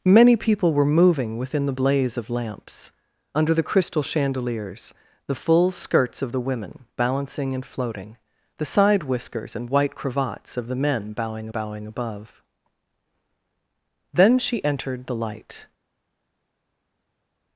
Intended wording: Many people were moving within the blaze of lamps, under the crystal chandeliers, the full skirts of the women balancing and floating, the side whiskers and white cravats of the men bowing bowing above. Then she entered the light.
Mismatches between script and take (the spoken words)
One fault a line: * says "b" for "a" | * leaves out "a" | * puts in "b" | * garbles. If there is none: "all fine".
all fine